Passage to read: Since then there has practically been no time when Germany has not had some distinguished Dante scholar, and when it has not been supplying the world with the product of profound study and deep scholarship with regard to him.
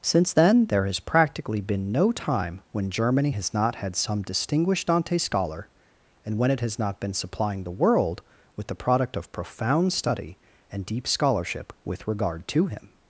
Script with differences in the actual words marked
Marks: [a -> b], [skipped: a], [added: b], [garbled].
Since then there has practically been no time when Germany has not had some distinguished Dante scholar, and when it has not been supplying the world with the product of profound study and deep scholarship with regard to him.